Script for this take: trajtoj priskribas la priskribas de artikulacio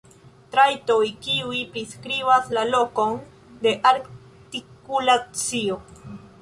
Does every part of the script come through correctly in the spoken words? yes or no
no